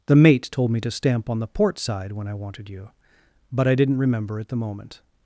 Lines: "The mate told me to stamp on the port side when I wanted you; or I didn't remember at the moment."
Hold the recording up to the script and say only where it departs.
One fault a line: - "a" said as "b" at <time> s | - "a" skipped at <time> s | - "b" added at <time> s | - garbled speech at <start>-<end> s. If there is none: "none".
- "or" said as "but" at 3.5 s